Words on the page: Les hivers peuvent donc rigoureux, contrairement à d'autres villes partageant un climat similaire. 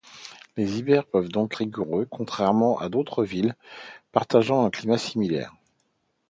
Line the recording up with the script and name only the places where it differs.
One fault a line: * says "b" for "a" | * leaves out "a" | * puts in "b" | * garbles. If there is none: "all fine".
all fine